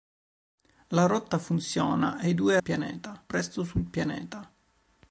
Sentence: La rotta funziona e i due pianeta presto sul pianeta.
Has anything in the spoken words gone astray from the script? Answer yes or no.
no